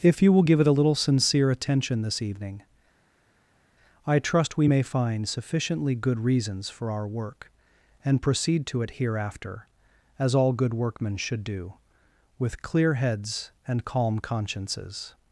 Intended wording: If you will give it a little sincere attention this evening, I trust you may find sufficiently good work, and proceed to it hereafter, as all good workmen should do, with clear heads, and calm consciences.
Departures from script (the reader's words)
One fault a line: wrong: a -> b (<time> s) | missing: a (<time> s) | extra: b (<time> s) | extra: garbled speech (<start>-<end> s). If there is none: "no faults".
wrong: you -> we (4.6 s)
extra: reasons for our (6.2 s)